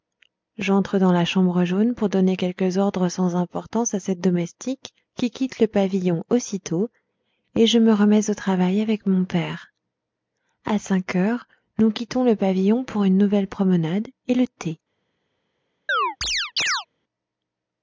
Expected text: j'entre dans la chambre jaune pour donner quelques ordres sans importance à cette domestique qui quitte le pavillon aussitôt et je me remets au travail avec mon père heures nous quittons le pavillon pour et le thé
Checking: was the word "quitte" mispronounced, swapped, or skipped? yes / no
no